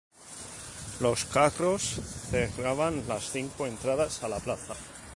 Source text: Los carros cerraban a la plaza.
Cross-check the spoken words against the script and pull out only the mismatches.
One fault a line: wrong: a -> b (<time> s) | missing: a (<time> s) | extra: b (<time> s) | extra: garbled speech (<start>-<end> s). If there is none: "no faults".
extra: las cinco entradas (3.1 s)